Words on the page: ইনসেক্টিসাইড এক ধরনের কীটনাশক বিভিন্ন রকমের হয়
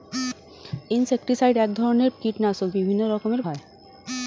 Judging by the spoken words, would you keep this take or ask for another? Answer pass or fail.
pass